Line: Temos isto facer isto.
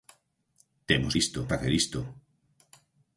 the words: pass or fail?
pass